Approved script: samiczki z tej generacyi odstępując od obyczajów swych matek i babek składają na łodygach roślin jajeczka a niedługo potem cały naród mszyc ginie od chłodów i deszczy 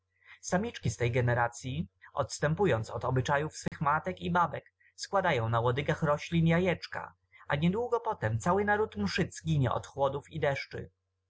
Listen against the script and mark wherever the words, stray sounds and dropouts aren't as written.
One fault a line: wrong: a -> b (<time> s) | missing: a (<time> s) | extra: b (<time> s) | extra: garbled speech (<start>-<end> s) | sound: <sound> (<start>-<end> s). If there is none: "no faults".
sound: dropout (3.7-3.7 s)